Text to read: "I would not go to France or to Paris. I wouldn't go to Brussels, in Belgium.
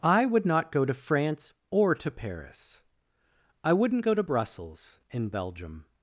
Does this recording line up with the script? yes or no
yes